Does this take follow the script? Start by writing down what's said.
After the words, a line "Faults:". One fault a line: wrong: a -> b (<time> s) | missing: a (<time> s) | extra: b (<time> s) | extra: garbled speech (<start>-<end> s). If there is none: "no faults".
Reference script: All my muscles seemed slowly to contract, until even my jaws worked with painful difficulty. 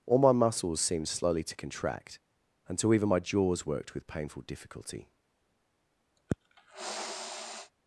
All my muscles seemed slowly to contract, until even my jaws worked with painful difficulty.
Faults:
no faults